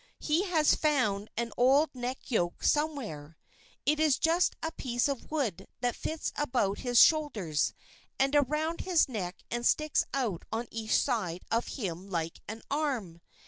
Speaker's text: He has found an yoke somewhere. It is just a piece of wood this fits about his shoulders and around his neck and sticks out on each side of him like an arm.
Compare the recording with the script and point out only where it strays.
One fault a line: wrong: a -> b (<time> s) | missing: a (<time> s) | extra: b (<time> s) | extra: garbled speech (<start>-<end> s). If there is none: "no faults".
extra: old neck (1.6 s)
wrong: this -> that (5.8 s)